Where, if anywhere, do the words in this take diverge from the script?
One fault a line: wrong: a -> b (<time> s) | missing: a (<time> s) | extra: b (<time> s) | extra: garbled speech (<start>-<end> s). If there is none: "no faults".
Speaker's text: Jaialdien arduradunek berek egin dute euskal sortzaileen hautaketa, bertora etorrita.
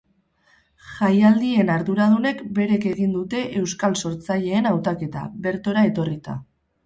no faults